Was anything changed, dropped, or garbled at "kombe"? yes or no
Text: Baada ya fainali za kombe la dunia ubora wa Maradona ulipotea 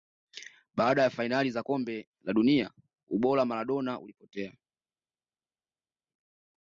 no